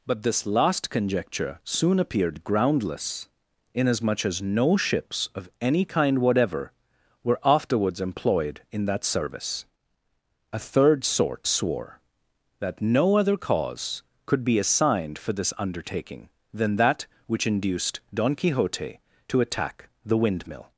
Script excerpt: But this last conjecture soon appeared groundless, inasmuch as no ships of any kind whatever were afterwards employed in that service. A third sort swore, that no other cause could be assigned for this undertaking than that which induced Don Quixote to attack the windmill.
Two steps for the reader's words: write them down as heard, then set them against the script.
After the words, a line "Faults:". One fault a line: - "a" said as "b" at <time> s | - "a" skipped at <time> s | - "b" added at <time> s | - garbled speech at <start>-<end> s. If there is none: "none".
But this last conjecture soon appeared groundless, inasmuch as no ships of any kind whatever were afterwards employed in that service. A third sort swore, that no other cause could be assigned for this undertaking than that which induced Don Quixote to attack the windmill.
Faults:
none